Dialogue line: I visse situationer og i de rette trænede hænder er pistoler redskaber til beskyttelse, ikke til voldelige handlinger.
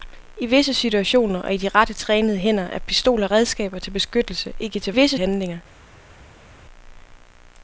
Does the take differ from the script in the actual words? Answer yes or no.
yes